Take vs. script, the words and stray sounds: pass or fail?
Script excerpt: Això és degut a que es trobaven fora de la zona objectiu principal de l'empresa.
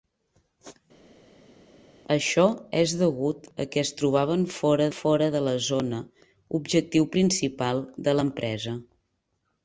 fail